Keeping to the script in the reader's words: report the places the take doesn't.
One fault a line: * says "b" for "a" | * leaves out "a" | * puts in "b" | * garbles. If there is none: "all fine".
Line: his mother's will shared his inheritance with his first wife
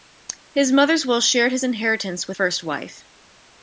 * leaves out "his"